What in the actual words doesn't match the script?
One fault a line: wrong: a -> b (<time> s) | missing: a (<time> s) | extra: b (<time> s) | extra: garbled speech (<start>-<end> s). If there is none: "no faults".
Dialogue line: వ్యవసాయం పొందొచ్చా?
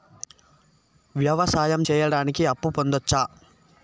extra: సేయడానికి అప్పు (1.8 s)